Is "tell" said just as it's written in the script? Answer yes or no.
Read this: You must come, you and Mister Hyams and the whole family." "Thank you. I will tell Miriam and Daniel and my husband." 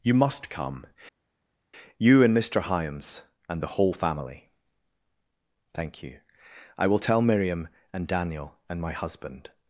yes